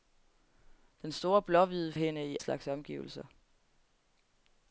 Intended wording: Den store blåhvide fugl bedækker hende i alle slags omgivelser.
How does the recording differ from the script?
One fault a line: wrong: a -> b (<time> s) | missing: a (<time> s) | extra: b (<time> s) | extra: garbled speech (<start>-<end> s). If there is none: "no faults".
missing: fugl bedækker (1.9 s)
missing: alle (2.4 s)